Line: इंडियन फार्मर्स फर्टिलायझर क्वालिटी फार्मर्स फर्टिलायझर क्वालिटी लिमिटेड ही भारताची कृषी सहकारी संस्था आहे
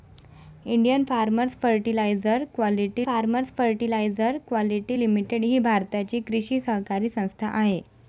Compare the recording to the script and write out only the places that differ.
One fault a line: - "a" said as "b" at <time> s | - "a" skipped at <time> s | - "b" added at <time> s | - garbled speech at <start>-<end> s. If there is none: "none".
none